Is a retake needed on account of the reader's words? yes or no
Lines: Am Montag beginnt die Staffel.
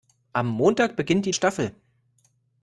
no